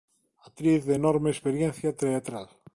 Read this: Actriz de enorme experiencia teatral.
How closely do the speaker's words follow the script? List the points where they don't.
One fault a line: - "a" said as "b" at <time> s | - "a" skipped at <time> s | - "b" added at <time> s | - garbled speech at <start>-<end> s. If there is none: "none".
none